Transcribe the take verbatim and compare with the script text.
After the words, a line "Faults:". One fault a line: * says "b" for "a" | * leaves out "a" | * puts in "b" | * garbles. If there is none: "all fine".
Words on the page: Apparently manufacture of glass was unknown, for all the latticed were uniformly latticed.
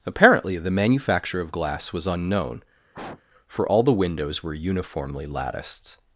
Apparently the manufacture of glass was unknown, for all the windows were uniformly latticed.
Faults:
* puts in "the"
* says "windows" for "latticed"